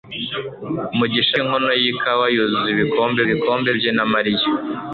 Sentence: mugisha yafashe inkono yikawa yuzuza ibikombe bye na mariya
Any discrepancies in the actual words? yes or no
yes